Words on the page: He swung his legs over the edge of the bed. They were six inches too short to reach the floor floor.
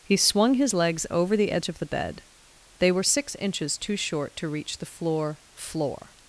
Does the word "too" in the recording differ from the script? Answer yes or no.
no